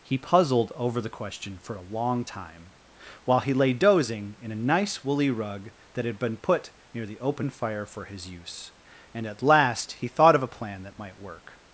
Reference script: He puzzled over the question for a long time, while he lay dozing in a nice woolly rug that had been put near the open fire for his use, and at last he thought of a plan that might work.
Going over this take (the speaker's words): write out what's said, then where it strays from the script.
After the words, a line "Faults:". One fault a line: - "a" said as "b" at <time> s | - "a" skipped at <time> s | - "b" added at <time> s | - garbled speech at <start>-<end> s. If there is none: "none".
He puzzled over the question for a long time, while he lay dozing in a nice woolly rug that had been put near the open fire for his use, and at last he thought of a plan that might work.
Faults:
none